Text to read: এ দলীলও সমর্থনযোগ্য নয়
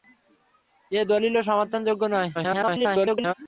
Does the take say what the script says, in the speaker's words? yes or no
no